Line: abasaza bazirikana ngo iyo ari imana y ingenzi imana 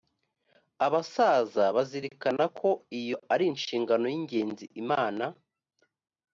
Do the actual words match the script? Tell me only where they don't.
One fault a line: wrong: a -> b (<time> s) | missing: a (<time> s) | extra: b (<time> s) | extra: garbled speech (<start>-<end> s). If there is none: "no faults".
wrong: ngo -> ko (2.6 s)
wrong: imana -> inshingano (3.5 s)